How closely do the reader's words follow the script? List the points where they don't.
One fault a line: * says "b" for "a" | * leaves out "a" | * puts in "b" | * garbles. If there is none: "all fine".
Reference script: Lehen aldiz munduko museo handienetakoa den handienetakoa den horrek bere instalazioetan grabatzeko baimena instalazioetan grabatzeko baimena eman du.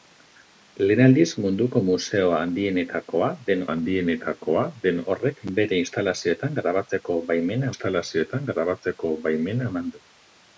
all fine